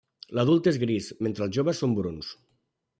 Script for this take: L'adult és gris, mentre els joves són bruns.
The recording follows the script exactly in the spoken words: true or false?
true